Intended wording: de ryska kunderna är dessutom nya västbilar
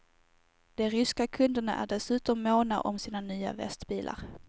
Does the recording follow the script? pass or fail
fail